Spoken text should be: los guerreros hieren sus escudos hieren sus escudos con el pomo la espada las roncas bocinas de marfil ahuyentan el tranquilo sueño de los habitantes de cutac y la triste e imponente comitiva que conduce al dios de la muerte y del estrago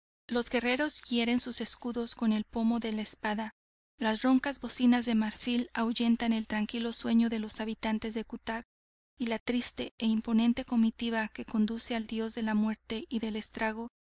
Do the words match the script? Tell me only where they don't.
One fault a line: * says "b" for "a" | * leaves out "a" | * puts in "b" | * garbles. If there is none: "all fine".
* leaves out "hieren sus escudos"
* puts in "de"